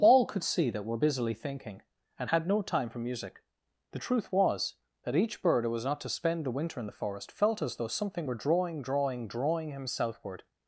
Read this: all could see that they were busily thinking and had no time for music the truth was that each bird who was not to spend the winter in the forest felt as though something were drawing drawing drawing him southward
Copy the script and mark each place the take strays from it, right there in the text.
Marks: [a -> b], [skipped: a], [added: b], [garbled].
all could see that [skipped: they] were busily thinking and had no time for music the truth was that each bird who was not to spend the winter in the forest felt as though something were drawing drawing drawing him southward